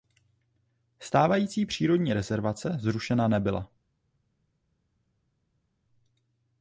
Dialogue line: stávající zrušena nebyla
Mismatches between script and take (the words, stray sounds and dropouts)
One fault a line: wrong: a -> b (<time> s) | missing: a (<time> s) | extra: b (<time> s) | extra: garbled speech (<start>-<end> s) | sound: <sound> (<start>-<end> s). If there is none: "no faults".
extra: přírodní rezervace (1.6 s)